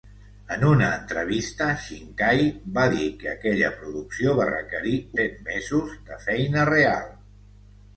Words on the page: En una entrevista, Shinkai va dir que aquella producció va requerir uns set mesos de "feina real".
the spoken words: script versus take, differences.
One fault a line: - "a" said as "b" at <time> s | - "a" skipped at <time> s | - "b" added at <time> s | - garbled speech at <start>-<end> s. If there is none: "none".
- "uns" skipped at 5.0 s